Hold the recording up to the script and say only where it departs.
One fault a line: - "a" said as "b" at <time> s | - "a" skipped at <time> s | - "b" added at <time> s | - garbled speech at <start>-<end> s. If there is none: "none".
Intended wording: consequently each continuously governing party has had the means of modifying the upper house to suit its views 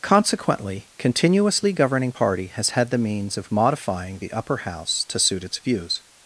- "each" skipped at 0.9 s